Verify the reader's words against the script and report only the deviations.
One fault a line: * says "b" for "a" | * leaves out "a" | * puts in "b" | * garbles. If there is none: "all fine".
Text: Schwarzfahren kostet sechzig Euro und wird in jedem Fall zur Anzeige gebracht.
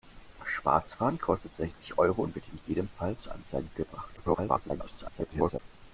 * garbles